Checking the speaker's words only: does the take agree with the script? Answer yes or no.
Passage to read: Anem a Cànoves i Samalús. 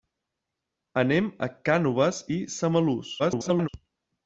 no